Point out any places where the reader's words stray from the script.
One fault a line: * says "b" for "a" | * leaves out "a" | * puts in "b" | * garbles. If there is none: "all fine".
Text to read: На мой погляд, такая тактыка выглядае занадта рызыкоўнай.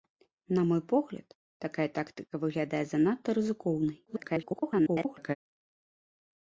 * garbles